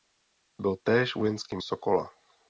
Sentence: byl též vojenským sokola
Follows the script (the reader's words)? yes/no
yes